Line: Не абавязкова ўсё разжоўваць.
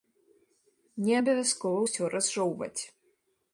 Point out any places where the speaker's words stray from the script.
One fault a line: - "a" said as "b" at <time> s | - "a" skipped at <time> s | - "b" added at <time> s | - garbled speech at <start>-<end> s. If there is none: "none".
none